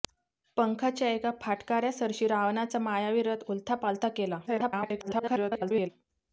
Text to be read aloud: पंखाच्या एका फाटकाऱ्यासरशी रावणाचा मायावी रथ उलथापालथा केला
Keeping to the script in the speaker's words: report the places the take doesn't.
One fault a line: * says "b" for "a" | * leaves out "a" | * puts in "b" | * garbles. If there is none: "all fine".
* garbles